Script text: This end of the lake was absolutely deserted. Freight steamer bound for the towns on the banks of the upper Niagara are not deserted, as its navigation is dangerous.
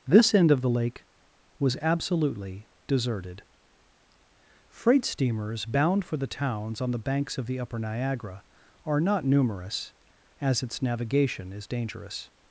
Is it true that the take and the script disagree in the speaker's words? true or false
true